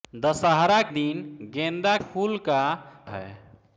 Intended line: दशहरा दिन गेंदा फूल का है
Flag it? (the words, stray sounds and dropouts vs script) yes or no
no